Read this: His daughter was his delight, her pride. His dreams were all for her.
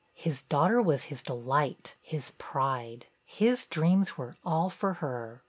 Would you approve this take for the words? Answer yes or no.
no